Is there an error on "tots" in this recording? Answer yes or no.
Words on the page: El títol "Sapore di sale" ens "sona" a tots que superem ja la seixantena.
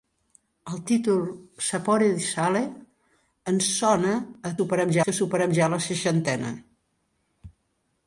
yes